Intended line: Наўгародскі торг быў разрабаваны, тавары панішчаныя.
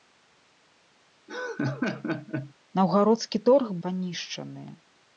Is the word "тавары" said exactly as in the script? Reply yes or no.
no